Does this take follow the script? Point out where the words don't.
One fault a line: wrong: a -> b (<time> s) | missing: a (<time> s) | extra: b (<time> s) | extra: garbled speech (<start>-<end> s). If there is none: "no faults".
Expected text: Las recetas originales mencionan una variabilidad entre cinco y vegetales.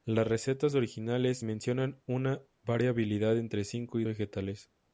no faults